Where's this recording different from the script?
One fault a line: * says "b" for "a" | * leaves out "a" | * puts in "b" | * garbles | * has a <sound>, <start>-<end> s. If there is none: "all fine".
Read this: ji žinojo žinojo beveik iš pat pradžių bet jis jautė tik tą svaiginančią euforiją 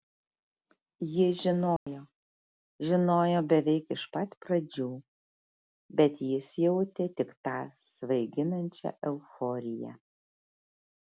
* has a dropout, 1.8-1.9 s